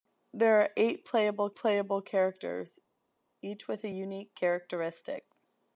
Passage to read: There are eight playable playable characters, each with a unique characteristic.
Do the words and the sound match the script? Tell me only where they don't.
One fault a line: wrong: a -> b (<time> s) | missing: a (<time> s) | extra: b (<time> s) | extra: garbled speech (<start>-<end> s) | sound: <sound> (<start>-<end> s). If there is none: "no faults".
no faults